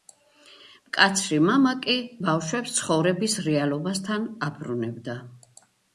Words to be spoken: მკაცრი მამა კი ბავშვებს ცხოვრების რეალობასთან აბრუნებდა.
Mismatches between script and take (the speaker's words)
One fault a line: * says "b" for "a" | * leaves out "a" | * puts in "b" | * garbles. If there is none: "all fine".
all fine